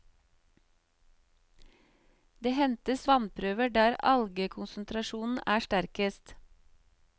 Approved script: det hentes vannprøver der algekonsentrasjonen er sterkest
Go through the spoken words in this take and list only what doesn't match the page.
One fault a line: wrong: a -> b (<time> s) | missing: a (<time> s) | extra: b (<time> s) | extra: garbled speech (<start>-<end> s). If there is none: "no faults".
no faults